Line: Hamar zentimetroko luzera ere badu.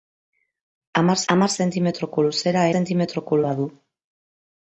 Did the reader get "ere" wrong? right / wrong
wrong